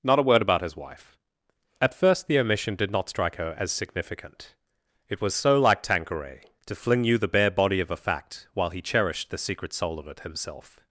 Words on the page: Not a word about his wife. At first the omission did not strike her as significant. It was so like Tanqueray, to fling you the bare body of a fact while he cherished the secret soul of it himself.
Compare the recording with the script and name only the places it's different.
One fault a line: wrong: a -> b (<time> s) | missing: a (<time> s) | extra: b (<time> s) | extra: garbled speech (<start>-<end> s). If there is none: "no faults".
no faults